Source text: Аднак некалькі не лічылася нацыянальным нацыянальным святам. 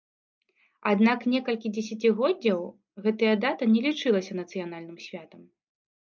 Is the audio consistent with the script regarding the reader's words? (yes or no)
no